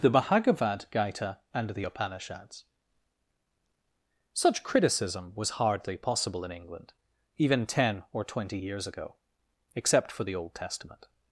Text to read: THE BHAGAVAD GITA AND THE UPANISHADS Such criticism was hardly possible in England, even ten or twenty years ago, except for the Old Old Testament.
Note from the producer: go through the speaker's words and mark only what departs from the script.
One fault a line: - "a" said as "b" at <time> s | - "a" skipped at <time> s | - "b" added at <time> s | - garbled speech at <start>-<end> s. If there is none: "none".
- "Old" skipped at 10.5 s